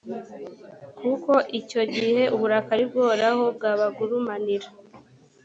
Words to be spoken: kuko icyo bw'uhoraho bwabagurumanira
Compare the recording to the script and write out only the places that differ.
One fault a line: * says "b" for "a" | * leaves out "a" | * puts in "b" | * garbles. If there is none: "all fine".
* puts in "gihe uburakari"